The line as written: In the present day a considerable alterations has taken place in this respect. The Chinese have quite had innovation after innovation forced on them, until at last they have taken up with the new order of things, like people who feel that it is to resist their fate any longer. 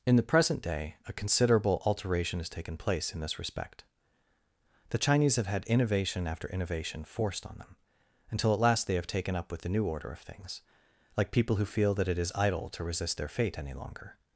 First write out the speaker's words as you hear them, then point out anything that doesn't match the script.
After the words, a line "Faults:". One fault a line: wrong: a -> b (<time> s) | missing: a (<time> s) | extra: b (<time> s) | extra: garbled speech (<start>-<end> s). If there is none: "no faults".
In the present day a considerable alteration has taken place in this respect. The Chinese have had innovation after innovation forced on them, until at last they have taken up with the new order of things, like people who feel that it is idle to resist their fate any longer.
Faults:
wrong: alterations -> alteration (1.8 s)
missing: quite (5.5 s)
extra: idle (12.3 s)